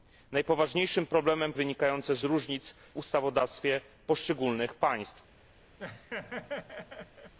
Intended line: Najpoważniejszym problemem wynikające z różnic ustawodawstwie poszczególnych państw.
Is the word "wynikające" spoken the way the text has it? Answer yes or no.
yes